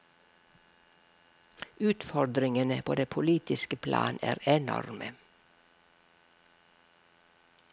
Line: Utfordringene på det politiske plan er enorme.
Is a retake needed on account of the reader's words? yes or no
no